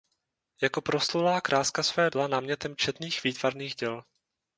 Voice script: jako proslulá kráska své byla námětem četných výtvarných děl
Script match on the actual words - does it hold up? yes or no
yes